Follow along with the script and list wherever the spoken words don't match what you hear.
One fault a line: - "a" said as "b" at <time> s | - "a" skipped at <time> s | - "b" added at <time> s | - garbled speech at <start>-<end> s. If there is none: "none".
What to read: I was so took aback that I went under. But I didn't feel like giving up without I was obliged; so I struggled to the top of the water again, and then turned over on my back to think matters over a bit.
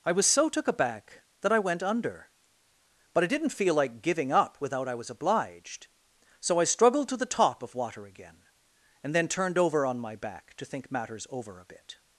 - "the" skipped at 7.7 s